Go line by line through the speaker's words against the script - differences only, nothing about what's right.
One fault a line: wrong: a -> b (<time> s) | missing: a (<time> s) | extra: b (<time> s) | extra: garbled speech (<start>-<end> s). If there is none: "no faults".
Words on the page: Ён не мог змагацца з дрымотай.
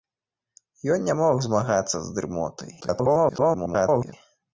extra: garbled speech (2.8-4.1 s)